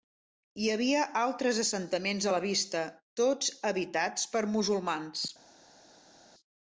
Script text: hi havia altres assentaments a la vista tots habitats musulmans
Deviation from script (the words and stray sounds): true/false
true